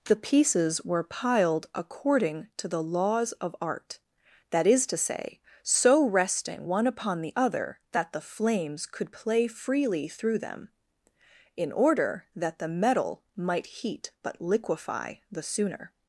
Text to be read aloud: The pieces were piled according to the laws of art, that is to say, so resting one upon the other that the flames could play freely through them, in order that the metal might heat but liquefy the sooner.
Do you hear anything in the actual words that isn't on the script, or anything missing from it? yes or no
no